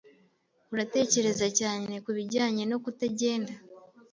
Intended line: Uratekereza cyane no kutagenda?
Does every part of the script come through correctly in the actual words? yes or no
no